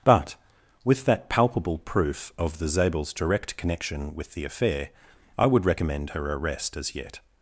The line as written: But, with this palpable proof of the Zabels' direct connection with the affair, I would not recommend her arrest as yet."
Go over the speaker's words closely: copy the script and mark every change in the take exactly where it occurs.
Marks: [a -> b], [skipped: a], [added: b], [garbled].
But, with [this -> that] palpable proof of the Zabels' direct connection with the affair, I would [skipped: not] recommend her arrest as yet."